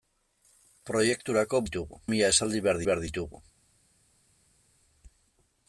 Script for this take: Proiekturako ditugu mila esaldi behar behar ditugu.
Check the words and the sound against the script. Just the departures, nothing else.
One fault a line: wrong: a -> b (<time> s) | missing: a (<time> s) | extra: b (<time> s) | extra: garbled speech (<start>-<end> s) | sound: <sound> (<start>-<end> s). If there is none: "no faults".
no faults